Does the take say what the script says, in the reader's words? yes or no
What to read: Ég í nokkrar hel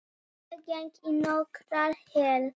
no